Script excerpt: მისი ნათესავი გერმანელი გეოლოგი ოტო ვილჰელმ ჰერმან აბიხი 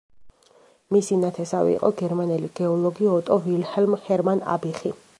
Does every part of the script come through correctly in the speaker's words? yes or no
no